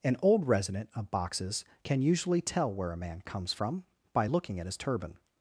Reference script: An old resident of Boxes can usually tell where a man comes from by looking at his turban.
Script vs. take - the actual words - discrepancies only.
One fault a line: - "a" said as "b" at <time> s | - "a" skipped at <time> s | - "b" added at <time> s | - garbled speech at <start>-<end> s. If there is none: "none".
none